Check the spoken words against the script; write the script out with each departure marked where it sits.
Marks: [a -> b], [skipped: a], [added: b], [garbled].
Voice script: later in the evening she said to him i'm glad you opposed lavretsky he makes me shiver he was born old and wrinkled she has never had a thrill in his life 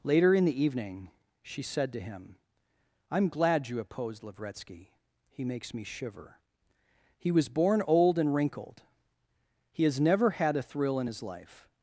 later in the evening she said to him i'm glad you opposed lavretsky he makes me shiver he was born old and wrinkled [she -> he] has never had a thrill in his life